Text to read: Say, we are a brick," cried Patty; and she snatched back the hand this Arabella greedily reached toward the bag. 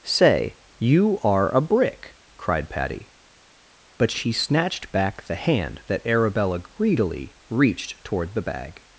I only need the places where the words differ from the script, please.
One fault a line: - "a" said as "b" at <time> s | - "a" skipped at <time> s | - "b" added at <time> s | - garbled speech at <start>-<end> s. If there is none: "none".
- "we" said as "you" at 0.8 s
- "and" said as "but" at 4.0 s
- "this" said as "that" at 5.9 s